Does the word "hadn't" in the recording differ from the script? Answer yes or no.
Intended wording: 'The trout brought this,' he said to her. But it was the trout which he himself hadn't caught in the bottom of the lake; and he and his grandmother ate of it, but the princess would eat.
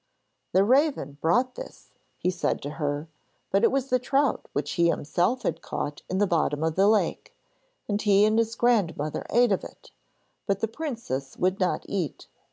yes